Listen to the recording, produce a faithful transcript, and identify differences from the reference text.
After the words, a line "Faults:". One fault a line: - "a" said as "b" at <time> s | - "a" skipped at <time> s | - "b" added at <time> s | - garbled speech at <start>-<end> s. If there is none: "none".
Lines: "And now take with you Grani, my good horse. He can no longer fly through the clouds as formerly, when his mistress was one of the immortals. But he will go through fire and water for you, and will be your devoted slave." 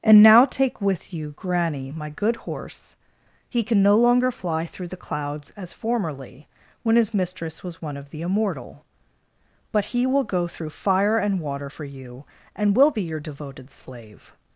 "And now take with you Grani, my good horse. He can no longer fly through the clouds as formerly, when his mistress was one of the immortal. But he will go through fire and water for you, and will be your devoted slave."
Faults:
- "immortals" said as "immortal" at 8.2 s